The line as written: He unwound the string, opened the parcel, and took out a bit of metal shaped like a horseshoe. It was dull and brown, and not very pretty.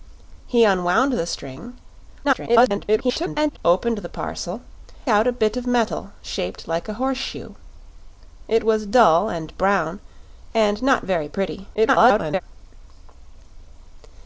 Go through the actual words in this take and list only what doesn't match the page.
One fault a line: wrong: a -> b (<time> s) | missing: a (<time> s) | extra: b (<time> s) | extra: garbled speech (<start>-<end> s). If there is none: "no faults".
extra: garbled speech (2.2-3.6 s)
missing: and took (4.6 s)
extra: garbled speech (11.7-12.4 s)